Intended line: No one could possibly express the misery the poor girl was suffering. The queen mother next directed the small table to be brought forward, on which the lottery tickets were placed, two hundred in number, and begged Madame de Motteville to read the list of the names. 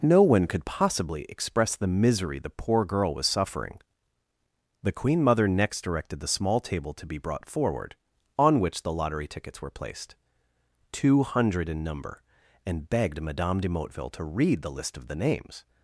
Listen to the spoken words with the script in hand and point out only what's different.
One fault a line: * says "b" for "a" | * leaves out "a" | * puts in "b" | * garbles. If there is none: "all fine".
all fine